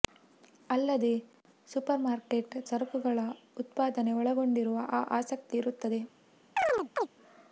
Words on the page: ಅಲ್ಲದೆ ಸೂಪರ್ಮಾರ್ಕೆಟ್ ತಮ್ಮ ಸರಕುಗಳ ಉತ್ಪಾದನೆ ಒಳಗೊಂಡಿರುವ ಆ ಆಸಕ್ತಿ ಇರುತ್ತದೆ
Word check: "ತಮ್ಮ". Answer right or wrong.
wrong